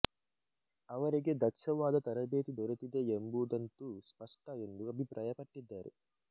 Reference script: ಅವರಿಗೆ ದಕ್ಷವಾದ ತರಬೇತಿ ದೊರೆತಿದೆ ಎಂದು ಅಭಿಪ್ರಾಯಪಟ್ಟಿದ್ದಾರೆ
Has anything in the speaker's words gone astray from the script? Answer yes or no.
yes